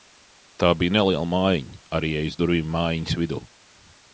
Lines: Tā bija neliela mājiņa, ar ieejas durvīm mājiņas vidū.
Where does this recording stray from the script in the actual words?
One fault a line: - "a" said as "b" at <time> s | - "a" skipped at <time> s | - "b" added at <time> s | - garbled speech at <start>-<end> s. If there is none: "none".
none